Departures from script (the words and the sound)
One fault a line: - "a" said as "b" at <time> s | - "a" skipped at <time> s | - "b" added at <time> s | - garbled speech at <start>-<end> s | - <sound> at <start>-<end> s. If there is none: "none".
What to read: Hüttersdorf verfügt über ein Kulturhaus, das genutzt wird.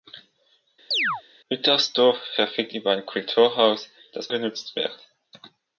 - chirp at 0.9-1.2 s